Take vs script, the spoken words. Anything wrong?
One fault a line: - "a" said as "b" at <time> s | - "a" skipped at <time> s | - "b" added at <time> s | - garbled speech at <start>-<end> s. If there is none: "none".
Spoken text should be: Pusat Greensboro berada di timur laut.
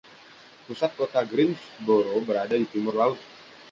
- "kota" added at 1.0 s